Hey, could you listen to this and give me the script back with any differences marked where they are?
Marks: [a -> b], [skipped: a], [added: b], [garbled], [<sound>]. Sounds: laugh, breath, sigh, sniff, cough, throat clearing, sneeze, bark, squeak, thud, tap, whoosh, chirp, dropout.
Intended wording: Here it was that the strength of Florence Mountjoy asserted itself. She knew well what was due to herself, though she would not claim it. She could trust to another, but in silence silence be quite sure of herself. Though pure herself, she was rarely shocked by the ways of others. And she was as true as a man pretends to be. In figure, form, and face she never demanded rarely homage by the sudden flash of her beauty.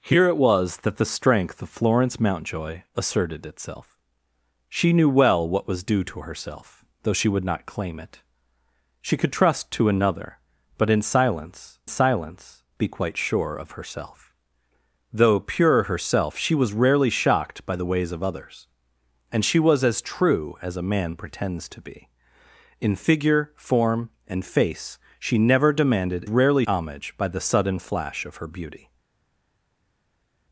Here it was that the strength of Florence Mountjoy asserted itself. She knew well what was due to herself, though she would not claim it. She could trust to another, but in silence silence be quite sure of herself. Though pure herself, she was rarely shocked by the ways of others. And she was as true as a man pretends to be. In figure, form, and face she never demanded rarely homage by the sudden flash of her beauty.